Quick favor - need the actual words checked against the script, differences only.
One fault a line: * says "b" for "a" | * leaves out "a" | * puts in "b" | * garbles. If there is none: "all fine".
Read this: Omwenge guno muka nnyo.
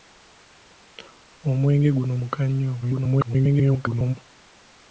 * garbles